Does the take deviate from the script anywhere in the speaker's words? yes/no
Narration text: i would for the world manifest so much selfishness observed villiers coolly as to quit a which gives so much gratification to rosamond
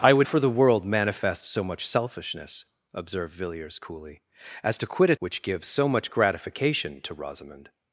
no